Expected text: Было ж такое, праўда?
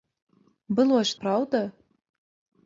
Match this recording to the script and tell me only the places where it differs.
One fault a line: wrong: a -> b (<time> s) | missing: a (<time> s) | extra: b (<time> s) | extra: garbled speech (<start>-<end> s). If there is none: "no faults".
missing: такое (1.2 s)